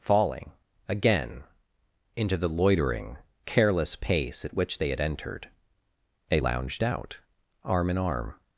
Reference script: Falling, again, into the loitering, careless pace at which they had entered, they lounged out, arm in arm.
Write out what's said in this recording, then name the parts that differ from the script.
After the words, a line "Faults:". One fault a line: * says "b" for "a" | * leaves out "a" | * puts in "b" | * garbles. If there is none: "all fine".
Falling, again, into the loitering, careless pace at which they had entered, they lounged out, arm in arm.
Faults:
all fine